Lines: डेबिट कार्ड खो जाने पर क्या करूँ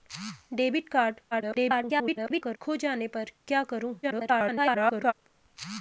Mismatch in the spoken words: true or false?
true